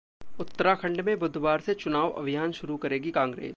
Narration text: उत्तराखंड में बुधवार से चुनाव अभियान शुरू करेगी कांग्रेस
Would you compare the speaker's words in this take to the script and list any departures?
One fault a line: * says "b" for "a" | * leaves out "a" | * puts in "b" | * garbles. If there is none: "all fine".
all fine